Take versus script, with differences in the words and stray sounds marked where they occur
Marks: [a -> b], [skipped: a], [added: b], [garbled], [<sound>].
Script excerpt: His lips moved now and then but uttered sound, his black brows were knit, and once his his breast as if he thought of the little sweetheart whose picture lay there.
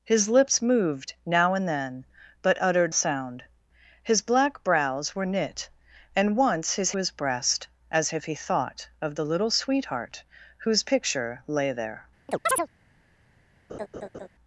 His lips moved now and then but uttered sound, his black brows were knit, and once his his breast as if he thought of the little sweetheart whose picture lay there. [chirp] [laugh]